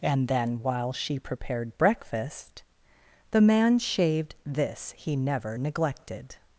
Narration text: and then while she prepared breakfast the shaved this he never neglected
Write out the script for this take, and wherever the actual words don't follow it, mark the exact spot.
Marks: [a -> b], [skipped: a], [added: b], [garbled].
and then while she prepared breakfast the [added: man] shaved this he never neglected